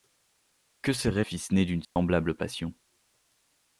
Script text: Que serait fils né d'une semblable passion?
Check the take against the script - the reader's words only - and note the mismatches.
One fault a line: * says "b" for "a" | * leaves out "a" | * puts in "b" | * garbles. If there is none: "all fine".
all fine